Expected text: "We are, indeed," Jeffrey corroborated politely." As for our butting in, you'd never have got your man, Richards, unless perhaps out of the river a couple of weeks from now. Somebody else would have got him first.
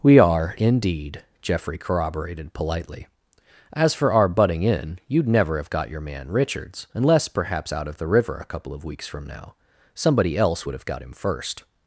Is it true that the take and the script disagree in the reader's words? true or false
false